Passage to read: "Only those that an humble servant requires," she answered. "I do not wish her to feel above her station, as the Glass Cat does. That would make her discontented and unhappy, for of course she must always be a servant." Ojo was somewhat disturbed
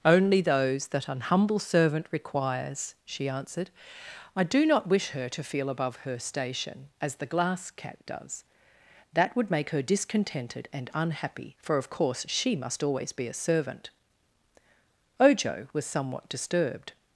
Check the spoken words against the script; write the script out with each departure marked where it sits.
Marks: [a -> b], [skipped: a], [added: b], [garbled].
"Only those that an humble servant requires," she answered. "I do not wish her to feel above her station, as the Glass Cat does. That would make her discontented and unhappy, for of course she must always be a servant." Ojo was somewhat disturbed